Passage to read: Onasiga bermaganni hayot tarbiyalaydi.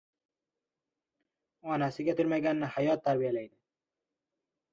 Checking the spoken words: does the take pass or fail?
pass